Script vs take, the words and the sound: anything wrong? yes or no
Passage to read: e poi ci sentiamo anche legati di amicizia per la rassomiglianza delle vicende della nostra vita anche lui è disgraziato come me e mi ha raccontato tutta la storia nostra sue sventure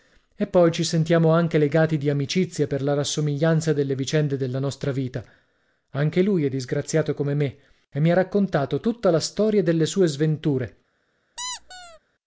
yes